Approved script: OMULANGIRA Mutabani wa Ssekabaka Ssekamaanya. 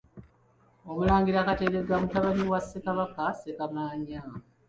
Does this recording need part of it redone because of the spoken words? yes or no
yes